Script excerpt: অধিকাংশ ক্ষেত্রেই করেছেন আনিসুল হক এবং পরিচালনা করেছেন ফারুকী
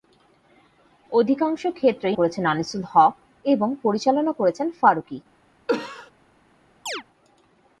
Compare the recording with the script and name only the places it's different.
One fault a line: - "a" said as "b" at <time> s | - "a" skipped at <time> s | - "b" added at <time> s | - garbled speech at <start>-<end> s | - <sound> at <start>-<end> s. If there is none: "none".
- cough at 5.7-6.1 s
- chirp at 6.9-7.0 s